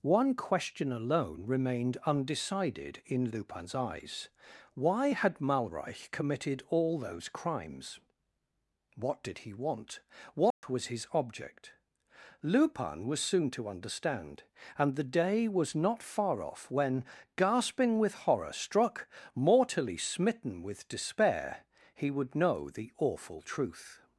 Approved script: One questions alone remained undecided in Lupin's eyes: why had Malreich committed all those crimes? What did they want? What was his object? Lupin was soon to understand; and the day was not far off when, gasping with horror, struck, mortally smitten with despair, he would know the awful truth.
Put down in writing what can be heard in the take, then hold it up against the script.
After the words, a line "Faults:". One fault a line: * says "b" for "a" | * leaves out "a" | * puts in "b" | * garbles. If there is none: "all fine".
One question alone remained undecided in Lupin's eyes: why had Malreich committed all those crimes? What did he want? What was his object? Lupin was soon to understand; and the day was not far off when, gasping with horror, struck, mortally smitten with despair, he would know the awful truth.
Faults:
* says "question" for "questions"
* says "he" for "they"